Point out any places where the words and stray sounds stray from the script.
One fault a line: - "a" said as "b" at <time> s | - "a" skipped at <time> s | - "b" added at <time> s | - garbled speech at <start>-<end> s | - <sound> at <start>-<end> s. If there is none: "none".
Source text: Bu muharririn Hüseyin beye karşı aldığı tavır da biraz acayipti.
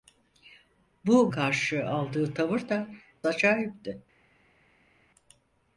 - "muharririn Hüseyin beye" skipped at 1.3 s
- "biraz" skipped at 2.9 s